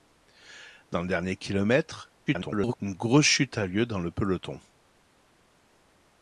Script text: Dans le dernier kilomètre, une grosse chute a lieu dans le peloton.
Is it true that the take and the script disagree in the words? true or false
true